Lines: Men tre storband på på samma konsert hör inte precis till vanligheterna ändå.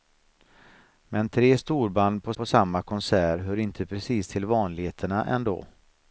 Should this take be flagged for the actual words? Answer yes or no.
no